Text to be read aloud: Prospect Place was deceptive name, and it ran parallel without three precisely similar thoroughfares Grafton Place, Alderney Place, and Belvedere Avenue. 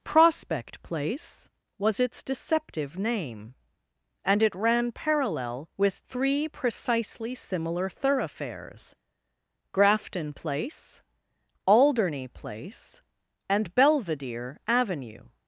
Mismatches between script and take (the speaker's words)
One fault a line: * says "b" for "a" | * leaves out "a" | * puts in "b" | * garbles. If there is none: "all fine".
* puts in "its"
* says "with" for "without"